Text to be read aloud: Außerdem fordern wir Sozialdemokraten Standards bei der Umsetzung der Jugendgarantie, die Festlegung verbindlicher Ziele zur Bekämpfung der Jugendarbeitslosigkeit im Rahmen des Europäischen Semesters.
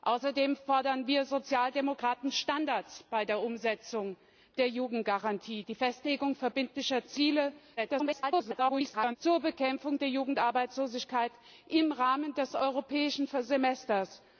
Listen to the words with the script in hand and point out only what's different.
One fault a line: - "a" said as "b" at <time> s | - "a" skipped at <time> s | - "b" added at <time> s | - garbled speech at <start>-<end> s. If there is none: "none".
- garbled speech at 7.8-9.2 s